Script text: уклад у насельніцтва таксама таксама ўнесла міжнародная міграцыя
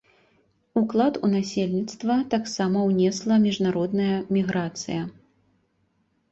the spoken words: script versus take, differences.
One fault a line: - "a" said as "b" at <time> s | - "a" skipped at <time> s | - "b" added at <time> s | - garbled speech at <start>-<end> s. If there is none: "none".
- "таксама" skipped at 2.8 s